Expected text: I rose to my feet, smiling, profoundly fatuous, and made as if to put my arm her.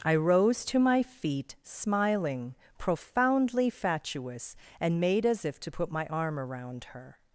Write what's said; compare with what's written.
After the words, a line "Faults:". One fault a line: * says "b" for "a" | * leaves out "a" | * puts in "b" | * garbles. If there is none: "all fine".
I rose to my feet, smiling, profoundly fatuous, and made as if to put my arm around her.
Faults:
* puts in "around"